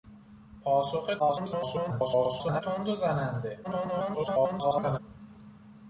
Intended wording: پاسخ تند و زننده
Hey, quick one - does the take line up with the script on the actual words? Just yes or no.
no